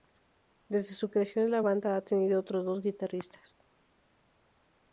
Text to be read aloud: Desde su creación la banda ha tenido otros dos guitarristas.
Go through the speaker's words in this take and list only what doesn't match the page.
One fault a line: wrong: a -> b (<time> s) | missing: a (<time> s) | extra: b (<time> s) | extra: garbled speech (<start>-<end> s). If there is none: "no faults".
no faults